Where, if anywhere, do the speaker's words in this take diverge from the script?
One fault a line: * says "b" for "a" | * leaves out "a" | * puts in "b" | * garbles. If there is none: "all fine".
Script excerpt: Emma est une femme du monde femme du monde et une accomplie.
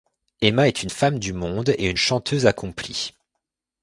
* leaves out "femme du monde"
* puts in "chanteuse"